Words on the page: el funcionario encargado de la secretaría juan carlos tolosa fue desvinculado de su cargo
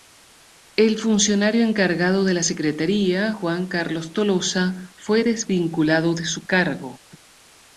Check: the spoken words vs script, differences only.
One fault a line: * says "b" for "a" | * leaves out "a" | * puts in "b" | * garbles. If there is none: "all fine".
all fine